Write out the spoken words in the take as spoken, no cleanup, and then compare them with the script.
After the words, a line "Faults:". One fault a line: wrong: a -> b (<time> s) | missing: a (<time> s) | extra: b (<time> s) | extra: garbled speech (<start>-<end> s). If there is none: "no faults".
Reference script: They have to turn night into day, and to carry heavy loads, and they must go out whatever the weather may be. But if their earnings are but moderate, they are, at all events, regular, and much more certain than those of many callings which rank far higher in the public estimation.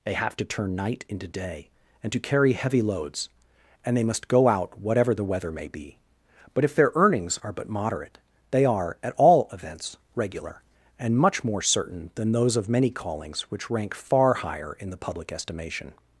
They have to turn night into day, and to carry heavy loads, and they must go out whatever the weather may be. But if their earnings are but moderate, they are, at all events, regular, and much more certain than those of many callings which rank far higher in the public estimation.
Faults:
no faults